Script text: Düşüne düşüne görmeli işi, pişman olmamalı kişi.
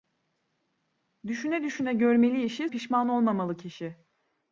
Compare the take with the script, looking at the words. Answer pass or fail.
pass